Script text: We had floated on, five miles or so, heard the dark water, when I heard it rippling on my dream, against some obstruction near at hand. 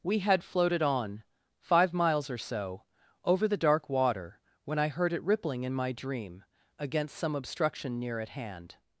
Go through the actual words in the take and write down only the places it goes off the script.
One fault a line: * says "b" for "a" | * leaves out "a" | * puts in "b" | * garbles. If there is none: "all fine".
* says "over" for "heard"
* says "in" for "on"